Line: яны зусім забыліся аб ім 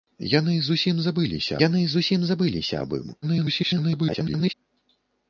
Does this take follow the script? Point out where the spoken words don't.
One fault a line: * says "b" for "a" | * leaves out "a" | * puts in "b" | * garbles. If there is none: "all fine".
* puts in "яны зусім забыліся"
* garbles